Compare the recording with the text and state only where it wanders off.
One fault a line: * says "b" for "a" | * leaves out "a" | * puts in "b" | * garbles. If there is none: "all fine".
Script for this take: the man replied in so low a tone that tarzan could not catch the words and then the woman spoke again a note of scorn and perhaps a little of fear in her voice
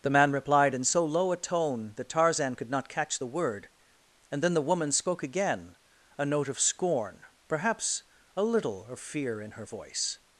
* says "word" for "words"
* leaves out "and"